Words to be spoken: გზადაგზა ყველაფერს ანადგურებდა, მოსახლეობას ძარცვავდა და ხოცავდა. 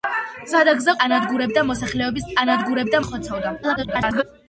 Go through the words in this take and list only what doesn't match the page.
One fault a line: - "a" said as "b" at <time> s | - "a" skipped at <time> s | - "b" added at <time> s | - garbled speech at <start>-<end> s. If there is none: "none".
- "ყველაფერს" skipped at 0.9 s
- "ძარცვავდა" said as "ანადგურებდა" at 2.4 s
- garbled speech at 3.6-4.2 s